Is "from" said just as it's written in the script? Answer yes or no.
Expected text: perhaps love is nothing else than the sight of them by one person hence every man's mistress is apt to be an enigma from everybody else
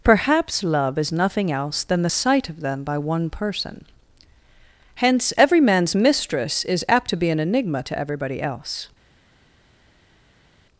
no